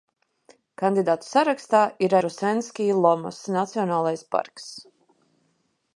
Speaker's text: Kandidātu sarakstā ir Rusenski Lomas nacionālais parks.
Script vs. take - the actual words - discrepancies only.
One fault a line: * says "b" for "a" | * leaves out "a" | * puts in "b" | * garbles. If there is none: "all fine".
all fine